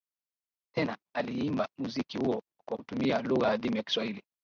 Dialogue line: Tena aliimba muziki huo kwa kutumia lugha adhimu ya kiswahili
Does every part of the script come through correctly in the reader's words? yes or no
yes